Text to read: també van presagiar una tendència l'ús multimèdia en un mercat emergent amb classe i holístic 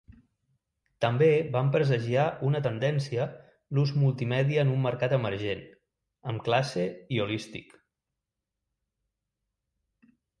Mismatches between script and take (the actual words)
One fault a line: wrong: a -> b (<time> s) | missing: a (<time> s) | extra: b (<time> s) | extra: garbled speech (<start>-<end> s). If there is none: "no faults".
no faults